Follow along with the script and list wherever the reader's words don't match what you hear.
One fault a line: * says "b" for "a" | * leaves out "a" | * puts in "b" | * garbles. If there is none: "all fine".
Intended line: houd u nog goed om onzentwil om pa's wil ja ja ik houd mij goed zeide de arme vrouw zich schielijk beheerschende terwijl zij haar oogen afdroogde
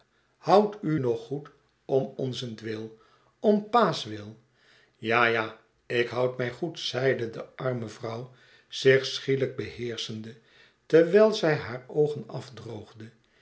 all fine